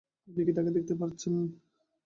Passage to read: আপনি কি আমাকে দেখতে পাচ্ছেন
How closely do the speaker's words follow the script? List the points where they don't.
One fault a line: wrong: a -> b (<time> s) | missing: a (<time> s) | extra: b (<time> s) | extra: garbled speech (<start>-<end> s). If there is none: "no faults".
wrong: আমাকে -> তাকে (0.5 s)